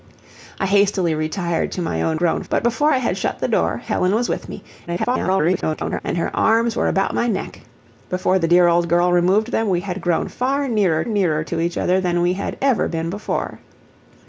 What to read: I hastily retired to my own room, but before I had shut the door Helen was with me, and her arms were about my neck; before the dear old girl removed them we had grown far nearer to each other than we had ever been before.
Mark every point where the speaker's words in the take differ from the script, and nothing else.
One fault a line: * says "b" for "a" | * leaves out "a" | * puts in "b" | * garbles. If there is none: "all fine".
* says "grown" for "room"
* garbles
* puts in "nearer"